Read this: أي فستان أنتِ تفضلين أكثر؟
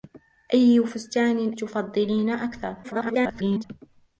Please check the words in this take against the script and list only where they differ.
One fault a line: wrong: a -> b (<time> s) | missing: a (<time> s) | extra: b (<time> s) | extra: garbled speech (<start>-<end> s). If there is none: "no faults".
missing: أنتِ (1.5 s)
extra: garbled speech (2.8-3.6 s)